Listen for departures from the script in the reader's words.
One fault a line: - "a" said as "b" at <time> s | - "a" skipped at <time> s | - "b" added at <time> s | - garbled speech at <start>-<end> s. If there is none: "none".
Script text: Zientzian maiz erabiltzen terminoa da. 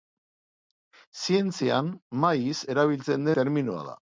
none